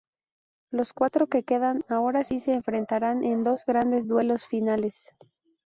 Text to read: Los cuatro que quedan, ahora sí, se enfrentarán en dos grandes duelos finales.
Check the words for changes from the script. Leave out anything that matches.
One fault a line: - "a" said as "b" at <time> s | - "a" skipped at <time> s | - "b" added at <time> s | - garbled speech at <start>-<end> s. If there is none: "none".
none